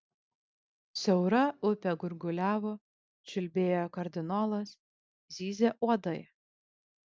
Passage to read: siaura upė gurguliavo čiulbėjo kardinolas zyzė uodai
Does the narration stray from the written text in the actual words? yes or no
no